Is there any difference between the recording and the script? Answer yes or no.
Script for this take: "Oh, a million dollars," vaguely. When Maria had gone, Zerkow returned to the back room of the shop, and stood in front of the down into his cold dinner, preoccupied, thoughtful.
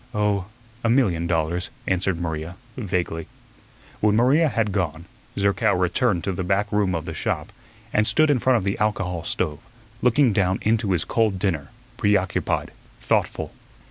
yes